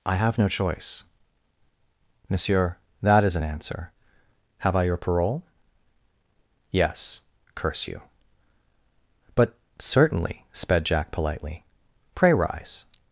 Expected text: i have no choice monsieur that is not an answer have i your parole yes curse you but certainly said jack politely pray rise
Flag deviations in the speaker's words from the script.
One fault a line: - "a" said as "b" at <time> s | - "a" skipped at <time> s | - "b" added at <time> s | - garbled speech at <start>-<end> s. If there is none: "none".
- "not" skipped at 3.4 s
- "said" said as "sped" at 10.5 s